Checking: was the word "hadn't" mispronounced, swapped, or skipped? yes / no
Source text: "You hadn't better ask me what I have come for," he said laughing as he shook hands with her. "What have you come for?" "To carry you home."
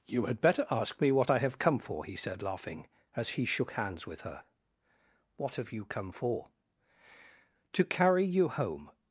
yes